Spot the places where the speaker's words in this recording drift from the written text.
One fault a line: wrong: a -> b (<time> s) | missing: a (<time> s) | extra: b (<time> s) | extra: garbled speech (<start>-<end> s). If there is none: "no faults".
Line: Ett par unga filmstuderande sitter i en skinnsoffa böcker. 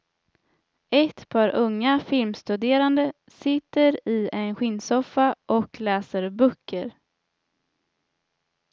extra: och läser (5.5 s)